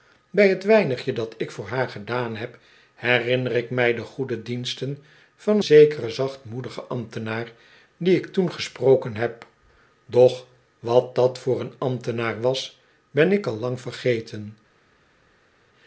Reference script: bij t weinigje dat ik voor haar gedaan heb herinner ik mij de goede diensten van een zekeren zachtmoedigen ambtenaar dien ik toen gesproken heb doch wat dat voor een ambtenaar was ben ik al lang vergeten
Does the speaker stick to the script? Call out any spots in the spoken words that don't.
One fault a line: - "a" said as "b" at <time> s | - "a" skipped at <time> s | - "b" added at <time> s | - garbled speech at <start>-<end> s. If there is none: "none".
- "een" skipped at 5.6 s